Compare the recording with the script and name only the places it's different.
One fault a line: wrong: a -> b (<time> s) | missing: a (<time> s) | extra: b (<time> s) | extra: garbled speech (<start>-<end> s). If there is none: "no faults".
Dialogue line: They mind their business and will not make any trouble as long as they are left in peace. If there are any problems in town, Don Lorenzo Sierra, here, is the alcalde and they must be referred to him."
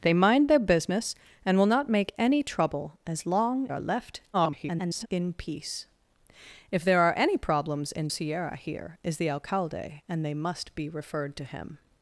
missing: as they (3.7 s)
extra: garbled speech (4.3-5.1 s)
missing: town Don Lorenzo (8.1 s)